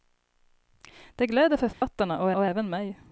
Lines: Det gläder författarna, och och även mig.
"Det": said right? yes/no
yes